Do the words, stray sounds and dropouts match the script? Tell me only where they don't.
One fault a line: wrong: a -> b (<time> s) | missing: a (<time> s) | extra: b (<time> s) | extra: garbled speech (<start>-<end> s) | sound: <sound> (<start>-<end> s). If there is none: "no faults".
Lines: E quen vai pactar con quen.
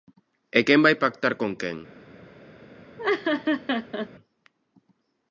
sound: laugh (3.0-4.1 s)